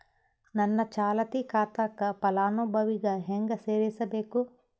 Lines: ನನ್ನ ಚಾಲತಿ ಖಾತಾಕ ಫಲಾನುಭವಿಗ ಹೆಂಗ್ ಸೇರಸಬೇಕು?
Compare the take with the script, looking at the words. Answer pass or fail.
pass